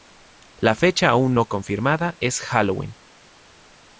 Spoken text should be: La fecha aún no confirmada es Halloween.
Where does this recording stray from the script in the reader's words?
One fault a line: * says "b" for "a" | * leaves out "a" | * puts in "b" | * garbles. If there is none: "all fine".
all fine